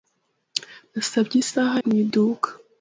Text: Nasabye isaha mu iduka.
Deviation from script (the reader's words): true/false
false